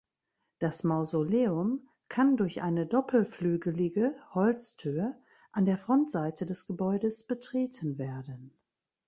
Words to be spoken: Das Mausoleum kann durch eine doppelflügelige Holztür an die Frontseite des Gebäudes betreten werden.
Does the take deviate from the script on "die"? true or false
true